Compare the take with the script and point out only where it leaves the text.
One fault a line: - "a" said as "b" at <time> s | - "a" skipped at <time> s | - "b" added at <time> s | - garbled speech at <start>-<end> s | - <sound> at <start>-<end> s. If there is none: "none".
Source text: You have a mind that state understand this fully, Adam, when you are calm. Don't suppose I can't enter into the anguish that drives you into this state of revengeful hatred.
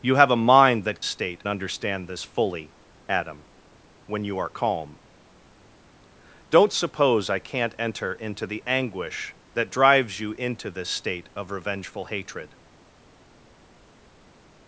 none